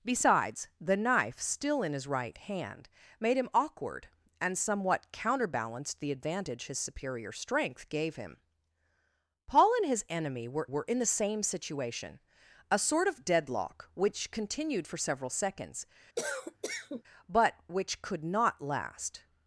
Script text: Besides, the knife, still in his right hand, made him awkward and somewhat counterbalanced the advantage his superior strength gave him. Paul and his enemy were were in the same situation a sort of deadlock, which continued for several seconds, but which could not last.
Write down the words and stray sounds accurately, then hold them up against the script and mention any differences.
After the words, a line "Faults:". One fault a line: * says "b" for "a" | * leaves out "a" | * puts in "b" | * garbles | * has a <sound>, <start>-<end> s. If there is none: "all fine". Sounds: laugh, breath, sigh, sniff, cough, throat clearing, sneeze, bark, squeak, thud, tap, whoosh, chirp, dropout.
Besides, the knife, still in his right hand, made him awkward and somewhat counterbalanced the advantage his superior strength gave him. Paul and his enemy were were in the same situation a sort of deadlock, which continued for several seconds, but which could not last.
Faults:
* has a cough, 16.2-17.0 s